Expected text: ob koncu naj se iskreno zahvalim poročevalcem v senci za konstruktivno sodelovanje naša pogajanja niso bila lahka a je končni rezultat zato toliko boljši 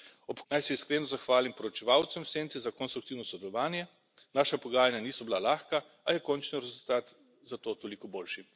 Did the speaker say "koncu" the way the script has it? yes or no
no